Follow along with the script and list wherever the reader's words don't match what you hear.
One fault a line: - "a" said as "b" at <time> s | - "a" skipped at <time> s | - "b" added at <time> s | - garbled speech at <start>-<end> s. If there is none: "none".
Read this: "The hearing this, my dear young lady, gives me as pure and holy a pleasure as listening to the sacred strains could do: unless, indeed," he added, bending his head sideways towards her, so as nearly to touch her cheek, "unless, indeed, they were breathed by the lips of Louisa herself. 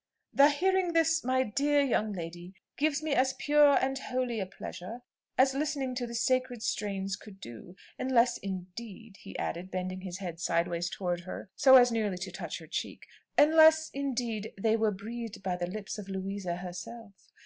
none